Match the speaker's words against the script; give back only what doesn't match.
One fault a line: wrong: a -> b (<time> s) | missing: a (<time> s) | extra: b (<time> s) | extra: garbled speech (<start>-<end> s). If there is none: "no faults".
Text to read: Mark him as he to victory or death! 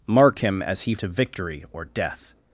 no faults